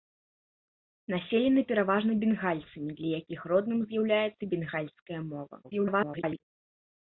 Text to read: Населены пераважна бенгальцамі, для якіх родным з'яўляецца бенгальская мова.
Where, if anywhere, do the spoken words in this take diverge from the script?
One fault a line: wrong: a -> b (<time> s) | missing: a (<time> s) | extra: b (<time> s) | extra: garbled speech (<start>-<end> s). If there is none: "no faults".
extra: garbled speech (5.6-6.4 s)